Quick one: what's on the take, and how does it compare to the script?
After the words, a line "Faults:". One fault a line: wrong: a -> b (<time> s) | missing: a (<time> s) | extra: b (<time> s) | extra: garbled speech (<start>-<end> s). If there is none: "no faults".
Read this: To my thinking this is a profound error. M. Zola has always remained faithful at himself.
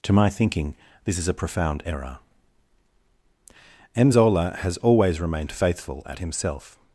To my thinking this is a profound error. M. Zola has always remained faithful at himself.
Faults:
no faults